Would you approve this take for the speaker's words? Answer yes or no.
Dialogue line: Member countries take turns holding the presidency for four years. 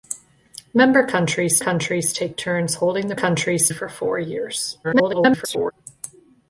no